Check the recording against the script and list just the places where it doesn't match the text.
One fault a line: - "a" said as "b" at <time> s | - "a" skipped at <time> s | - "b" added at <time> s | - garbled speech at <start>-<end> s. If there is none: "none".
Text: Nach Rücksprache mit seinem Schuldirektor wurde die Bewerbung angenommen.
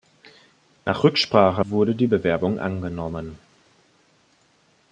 - "mit seinem Schuldirektor" skipped at 1.6 s